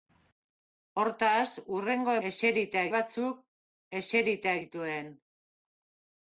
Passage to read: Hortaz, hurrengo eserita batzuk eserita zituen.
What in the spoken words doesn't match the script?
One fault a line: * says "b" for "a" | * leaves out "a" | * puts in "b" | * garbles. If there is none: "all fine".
all fine